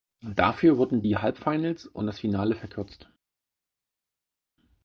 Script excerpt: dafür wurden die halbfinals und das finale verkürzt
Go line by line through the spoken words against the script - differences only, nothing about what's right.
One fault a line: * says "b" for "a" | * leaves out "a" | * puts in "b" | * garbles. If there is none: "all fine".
all fine